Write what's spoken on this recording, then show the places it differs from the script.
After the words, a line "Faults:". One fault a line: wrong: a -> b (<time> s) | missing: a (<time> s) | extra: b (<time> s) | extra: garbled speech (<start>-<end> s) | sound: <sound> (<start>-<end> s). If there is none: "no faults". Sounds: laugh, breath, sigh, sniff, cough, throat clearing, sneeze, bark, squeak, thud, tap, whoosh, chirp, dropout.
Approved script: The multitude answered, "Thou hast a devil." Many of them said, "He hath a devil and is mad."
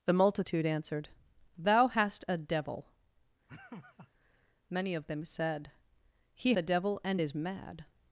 The multitude answered, "Thou hast a devil." Many of them said, "He a devil and is mad."
Faults:
sound: laugh (3.5-4.1 s)
missing: hath (6.5 s)